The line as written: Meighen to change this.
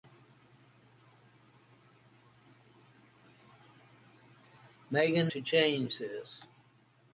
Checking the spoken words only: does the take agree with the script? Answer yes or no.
yes